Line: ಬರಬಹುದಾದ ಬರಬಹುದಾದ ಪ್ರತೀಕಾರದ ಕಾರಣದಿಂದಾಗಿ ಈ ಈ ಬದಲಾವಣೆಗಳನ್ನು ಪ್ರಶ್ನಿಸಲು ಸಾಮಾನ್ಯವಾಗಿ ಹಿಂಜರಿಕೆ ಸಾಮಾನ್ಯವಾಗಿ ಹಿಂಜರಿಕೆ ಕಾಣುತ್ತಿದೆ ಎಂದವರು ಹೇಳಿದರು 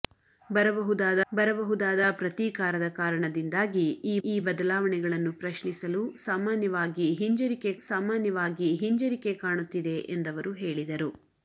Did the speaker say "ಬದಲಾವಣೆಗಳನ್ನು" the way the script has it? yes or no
yes